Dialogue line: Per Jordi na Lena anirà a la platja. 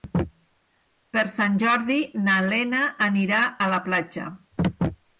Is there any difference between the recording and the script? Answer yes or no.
yes